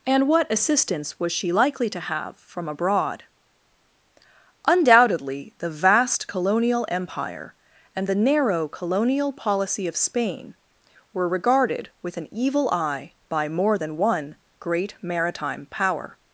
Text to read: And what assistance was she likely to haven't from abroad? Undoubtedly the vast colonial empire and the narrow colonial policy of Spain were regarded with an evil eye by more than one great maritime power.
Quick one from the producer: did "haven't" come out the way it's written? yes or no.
no